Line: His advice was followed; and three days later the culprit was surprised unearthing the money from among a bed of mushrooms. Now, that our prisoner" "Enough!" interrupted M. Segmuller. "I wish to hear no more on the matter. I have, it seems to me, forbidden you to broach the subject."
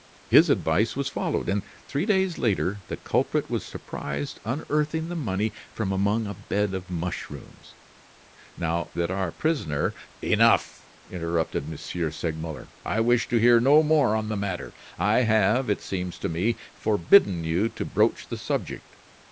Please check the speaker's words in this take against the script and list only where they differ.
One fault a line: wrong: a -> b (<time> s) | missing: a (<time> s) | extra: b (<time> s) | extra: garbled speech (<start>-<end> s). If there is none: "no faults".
no faults